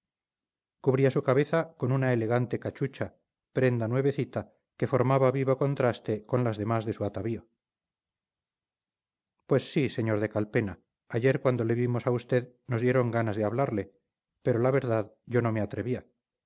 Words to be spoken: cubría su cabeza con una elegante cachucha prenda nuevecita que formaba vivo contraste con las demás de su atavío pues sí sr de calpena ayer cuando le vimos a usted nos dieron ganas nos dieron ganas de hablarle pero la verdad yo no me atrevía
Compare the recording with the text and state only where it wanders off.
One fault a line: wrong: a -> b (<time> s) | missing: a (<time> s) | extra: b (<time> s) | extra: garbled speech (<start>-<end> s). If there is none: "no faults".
missing: nos dieron ganas (13.4 s)